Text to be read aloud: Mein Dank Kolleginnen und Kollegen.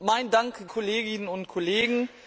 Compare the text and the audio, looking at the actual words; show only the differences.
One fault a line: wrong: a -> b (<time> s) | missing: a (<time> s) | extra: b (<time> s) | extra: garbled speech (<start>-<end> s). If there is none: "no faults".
no faults